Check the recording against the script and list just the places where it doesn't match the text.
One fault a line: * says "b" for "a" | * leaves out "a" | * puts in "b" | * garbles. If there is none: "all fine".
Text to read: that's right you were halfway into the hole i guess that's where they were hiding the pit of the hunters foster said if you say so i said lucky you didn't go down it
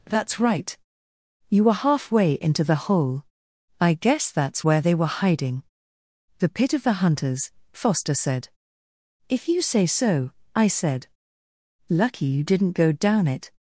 all fine